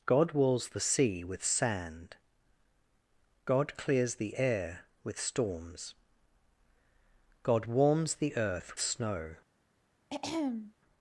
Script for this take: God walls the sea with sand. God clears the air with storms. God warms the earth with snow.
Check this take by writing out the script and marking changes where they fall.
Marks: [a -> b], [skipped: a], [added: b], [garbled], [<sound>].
God walls the sea with sand. God clears the air with storms. God warms the earth [skipped: with] snow. [throat clearing]